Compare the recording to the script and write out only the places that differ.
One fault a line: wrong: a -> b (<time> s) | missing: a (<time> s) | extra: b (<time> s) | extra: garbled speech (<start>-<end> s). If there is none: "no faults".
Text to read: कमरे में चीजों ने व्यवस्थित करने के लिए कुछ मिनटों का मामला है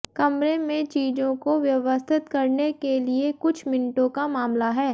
wrong: ने -> को (1.4 s)